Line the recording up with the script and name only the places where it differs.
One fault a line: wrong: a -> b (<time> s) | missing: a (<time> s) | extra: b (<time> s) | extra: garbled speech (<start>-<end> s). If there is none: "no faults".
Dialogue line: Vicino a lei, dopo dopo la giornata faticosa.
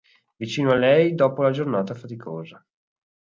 missing: dopo (1.4 s)